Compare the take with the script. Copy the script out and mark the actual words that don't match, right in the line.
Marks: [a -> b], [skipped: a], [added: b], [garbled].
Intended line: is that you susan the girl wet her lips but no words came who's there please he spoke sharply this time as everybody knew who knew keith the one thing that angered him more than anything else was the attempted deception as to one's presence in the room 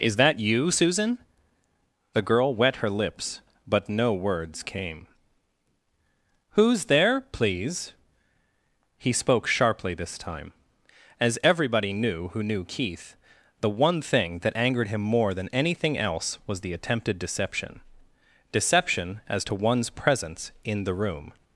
is that you susan the girl wet her lips but no words came who's there please he spoke sharply this time as everybody knew who knew keith the one thing that angered him more than anything else was the attempted deception [added: deception] as to one's presence in the room